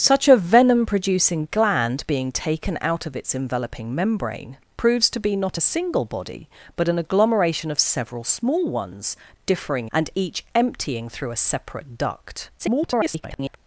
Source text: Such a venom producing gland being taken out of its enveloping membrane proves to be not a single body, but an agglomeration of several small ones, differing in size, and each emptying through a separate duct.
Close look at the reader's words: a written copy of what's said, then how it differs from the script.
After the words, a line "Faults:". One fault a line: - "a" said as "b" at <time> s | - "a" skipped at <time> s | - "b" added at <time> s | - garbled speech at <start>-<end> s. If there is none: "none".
Such a venom producing gland being taken out of its enveloping membrane proves to be not a single body, but an agglomeration of several small ones, differing and each emptying through a separate duct. [garbled]
Faults:
- "in size" skipped at 9.9 s
- garbled speech at 12.6-13.6 s